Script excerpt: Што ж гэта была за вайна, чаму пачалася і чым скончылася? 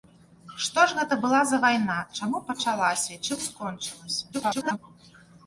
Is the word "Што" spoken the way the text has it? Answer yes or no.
yes